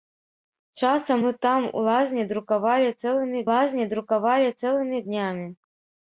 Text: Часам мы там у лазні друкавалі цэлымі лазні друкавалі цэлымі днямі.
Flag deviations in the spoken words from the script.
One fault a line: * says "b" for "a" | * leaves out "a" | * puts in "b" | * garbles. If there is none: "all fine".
all fine